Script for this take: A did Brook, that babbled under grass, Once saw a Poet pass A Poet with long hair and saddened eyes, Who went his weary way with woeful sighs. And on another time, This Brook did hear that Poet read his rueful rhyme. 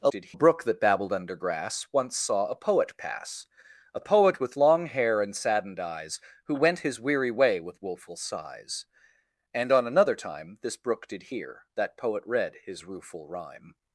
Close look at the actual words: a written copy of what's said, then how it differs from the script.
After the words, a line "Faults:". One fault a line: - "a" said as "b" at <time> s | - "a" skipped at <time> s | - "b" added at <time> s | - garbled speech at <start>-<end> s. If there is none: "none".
A did Brook, that babbled under grass, Once saw a Poet pass A Poet with long hair and saddened eyes, Who went his weary way with woeful sighs. And on another time, This Brook did hear that Poet read his rueful rhyme.
Faults:
none